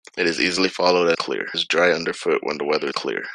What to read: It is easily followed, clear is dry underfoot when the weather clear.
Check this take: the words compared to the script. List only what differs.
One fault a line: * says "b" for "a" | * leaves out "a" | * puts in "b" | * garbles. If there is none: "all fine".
all fine